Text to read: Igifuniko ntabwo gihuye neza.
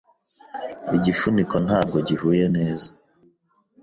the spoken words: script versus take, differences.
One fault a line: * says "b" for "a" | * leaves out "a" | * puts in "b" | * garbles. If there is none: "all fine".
all fine